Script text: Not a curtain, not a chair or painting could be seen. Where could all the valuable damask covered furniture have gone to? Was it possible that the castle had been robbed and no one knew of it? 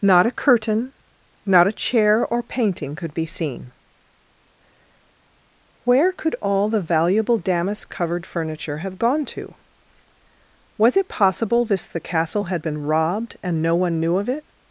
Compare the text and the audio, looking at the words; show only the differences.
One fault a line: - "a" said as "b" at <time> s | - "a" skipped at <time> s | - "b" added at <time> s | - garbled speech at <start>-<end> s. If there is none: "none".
- "that" said as "this" at 11.7 s